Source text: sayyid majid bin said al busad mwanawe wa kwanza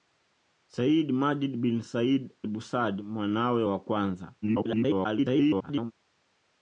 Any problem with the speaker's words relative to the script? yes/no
yes